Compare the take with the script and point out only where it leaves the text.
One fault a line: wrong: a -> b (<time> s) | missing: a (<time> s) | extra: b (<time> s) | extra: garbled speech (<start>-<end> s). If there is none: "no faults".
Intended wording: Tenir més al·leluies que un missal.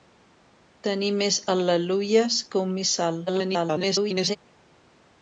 extra: garbled speech (3.3-4.4 s)